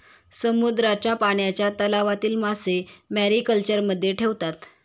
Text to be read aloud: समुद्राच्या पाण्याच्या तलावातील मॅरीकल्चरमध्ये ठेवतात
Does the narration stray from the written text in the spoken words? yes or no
yes